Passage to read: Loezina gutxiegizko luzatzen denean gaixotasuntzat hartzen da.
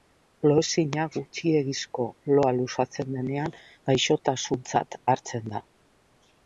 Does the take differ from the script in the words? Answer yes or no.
yes